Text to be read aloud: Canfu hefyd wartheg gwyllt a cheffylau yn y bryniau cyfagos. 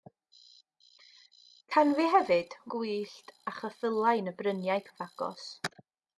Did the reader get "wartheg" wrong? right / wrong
wrong